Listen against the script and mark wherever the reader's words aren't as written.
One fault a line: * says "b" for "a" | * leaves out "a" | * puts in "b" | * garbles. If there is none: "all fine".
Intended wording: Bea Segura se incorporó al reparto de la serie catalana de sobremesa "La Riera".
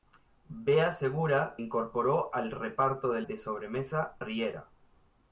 * leaves out "se"
* leaves out "la serie catalana"
* leaves out "La"